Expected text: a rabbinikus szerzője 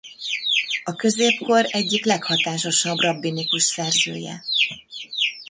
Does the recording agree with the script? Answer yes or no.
no